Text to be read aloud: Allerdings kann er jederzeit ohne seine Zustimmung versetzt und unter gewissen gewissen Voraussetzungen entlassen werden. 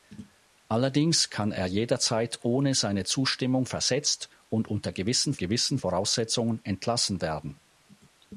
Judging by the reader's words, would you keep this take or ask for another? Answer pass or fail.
pass